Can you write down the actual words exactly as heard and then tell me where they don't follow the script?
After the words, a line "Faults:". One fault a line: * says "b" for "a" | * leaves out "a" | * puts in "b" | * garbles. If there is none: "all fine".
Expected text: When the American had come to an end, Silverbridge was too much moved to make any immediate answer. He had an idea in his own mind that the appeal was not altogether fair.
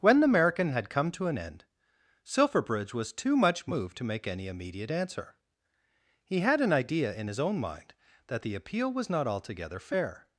When the American had come to an end, Silverbridge was too much moved to make any immediate answer. He had an idea in his own mind that the appeal was not altogether fair.
Faults:
all fine